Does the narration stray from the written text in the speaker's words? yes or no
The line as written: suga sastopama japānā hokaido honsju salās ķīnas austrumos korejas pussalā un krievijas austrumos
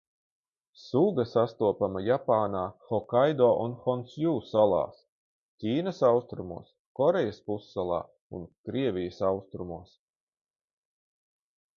yes